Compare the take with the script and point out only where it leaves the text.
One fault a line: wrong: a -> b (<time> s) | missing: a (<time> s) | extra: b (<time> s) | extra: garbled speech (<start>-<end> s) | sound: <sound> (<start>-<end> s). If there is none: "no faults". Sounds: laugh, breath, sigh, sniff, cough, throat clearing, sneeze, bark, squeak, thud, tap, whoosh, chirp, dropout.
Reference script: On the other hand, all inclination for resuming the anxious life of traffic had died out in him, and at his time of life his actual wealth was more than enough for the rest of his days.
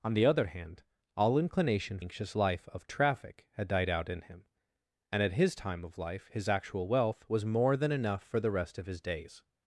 missing: for resuming the (2.0 s)